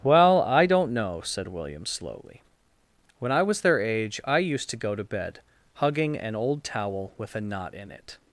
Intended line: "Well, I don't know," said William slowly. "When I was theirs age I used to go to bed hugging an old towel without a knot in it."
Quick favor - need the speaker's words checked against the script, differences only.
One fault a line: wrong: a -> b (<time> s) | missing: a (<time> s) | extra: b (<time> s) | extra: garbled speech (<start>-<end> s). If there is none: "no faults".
wrong: theirs -> their (3.6 s)
wrong: without -> with (7.2 s)